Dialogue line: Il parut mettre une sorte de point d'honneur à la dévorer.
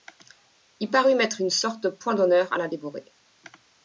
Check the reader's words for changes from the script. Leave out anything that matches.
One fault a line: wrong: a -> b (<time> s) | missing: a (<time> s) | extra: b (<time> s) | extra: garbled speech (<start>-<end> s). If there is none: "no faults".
no faults